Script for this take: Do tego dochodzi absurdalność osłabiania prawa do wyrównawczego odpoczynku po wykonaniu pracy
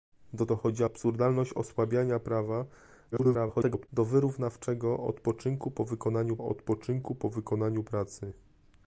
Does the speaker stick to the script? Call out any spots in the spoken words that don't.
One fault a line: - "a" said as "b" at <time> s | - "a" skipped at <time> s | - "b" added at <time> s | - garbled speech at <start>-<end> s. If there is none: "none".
- "tego" skipped at 0.5 s
- garbled speech at 3.1-3.9 s
- "odpoczynku po wykonaniu" added at 6.4 s